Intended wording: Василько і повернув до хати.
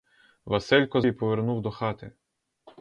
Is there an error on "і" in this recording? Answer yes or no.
no